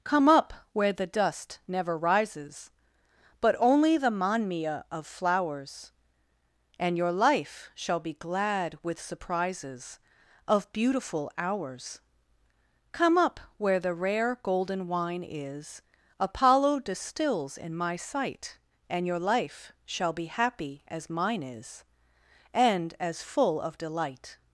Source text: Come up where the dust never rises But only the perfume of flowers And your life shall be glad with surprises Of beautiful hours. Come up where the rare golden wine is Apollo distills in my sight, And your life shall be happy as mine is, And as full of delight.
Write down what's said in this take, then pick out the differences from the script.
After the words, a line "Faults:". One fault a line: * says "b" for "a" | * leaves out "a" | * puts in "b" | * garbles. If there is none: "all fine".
Come up where the dust never rises But only the manmia of flowers And your life shall be glad with surprises Of beautiful hours. Come up where the rare golden wine is Apollo distills in my sight, And your life shall be happy as mine is, And as full of delight.
Faults:
* says "manmia" for "perfume"